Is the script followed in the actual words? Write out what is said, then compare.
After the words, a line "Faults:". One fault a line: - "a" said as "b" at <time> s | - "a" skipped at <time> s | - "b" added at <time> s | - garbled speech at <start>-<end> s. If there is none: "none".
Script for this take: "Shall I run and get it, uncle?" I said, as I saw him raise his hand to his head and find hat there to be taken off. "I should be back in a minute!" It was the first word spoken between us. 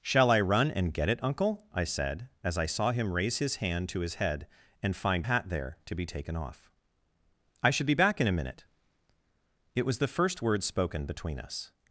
"Shall I run and get it, uncle?" I said, as I saw him raise his hand to his head and find hat there to be taken off. "I should be back in a minute!" It was the first word spoken between us.
Faults:
none